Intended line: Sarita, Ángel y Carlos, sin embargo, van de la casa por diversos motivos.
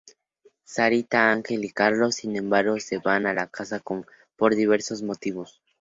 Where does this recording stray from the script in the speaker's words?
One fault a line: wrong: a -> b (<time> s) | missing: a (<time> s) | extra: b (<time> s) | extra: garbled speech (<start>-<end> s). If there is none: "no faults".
extra: se (2.8 s)